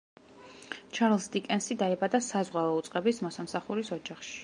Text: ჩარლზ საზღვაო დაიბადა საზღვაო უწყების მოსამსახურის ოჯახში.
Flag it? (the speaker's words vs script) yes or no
yes